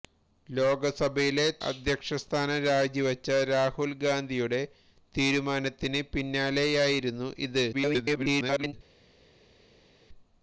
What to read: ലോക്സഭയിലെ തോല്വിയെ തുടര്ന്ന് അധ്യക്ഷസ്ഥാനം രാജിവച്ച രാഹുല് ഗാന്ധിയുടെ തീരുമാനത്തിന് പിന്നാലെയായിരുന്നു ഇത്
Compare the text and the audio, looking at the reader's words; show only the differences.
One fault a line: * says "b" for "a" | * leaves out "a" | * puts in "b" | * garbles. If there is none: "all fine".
* leaves out "തോല്വിയെ തുടര്ന്ന്"
* garbles